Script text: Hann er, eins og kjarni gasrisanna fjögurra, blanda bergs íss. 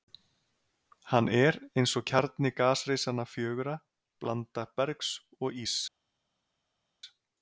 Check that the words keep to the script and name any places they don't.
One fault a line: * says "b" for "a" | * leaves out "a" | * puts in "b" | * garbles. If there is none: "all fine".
* puts in "og"